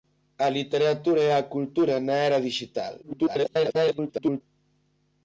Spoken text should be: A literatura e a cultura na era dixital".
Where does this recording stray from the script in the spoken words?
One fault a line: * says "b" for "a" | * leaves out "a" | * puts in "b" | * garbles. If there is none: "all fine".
* garbles